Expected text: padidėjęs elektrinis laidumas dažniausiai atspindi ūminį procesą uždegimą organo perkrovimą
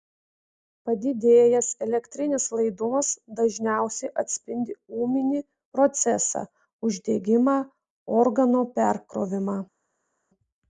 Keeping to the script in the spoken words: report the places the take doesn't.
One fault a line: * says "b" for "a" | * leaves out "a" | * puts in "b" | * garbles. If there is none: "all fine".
all fine